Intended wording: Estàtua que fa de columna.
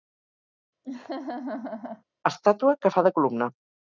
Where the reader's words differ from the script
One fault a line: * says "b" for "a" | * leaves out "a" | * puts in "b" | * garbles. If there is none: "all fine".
all fine